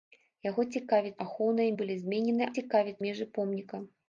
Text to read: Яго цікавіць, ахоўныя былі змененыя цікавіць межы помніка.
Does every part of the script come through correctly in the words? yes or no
yes